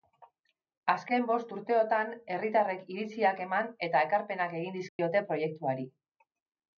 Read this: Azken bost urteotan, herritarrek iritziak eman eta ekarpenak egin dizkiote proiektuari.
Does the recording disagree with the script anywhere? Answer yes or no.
no